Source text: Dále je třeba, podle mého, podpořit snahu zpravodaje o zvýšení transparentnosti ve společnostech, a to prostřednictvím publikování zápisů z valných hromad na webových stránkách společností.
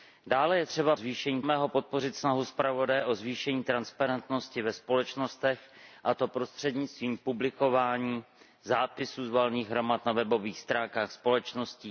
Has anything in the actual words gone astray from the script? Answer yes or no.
yes